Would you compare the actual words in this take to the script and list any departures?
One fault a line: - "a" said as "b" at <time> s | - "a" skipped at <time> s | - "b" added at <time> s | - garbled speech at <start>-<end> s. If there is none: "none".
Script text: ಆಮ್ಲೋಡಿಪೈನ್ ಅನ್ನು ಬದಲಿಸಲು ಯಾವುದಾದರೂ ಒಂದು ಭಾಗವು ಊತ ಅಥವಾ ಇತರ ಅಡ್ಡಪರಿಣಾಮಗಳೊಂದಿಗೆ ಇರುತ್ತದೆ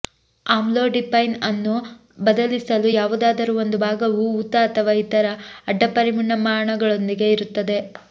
none